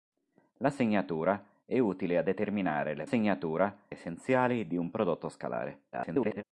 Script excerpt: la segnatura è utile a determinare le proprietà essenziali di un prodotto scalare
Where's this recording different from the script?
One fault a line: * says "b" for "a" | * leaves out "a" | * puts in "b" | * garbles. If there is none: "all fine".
* says "segnatura" for "proprietà"
* garbles